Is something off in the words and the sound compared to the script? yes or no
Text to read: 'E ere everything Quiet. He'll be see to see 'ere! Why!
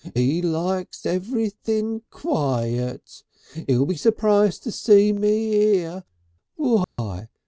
yes